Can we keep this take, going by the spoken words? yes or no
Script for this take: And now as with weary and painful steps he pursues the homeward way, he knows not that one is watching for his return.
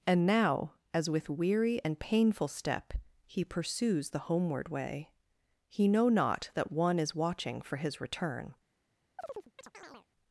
no